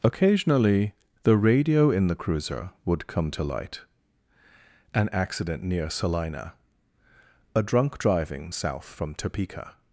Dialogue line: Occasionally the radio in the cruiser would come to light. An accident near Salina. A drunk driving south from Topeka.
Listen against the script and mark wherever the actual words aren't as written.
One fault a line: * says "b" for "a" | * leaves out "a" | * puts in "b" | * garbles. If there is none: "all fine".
all fine